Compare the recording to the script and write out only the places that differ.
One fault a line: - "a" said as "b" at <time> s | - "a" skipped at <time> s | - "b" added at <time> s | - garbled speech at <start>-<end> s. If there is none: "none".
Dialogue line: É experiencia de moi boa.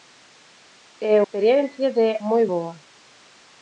none